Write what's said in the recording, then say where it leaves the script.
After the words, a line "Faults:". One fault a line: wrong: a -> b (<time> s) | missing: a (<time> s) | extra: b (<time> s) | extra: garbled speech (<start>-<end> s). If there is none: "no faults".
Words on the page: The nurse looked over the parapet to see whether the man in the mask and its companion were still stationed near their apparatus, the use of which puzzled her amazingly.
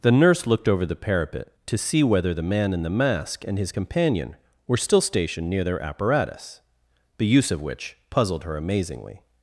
The nurse looked over the parapet to see whether the man in the mask and his companion were still stationed near their apparatus, the use of which puzzled her amazingly.
Faults:
wrong: its -> his (3.6 s)